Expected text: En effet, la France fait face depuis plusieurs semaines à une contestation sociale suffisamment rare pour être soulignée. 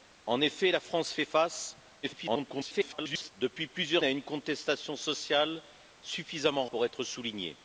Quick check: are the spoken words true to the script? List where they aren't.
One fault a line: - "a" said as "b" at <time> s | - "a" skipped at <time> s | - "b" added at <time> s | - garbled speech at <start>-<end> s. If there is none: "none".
- garbled speech at 2.0-3.3 s
- "semaines" skipped at 4.0 s
- "rare" skipped at 6.7 s